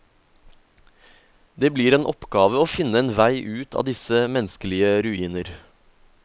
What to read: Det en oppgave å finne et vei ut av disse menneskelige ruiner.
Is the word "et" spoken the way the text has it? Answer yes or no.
no